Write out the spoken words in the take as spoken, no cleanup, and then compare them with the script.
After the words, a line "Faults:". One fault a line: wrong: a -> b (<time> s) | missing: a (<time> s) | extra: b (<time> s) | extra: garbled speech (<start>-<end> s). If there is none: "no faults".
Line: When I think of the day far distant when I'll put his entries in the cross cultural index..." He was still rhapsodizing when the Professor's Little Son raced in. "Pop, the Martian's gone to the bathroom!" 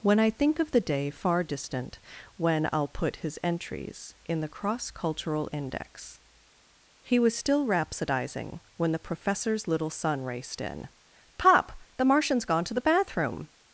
When I think of the day far distant when I'll put his entries in the cross cultural index..." He was still rhapsodizing when the Professor's Little Son raced in. "Pop, the Martian's gone to the bathroom!"
Faults:
no faults